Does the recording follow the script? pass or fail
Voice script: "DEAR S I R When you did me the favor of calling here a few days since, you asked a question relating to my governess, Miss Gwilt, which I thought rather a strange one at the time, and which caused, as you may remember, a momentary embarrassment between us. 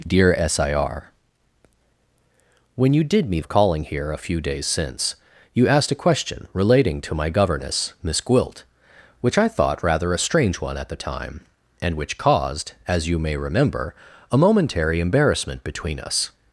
fail